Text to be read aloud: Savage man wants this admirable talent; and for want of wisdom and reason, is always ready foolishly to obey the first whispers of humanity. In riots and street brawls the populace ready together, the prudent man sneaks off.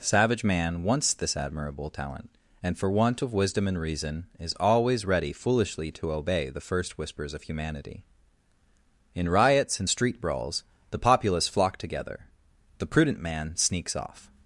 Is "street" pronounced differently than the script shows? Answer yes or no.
no